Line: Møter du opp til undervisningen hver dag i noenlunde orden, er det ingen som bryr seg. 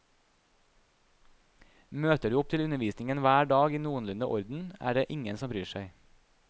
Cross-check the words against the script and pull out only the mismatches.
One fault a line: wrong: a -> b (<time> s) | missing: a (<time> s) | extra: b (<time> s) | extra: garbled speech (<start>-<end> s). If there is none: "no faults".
no faults